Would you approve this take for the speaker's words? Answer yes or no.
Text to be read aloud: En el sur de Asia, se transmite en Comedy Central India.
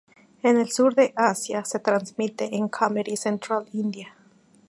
yes